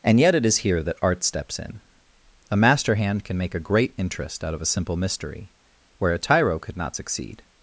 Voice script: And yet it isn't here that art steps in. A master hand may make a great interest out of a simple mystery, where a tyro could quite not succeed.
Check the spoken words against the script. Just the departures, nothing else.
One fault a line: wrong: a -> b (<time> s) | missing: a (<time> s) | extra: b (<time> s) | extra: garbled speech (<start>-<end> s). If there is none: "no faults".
wrong: isn't -> is (0.5 s)
wrong: may -> can (3.2 s)
missing: quite (6.8 s)